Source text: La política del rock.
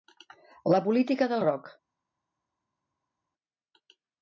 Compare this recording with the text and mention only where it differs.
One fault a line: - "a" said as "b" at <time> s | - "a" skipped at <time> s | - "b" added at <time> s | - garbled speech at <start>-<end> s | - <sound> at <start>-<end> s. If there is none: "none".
none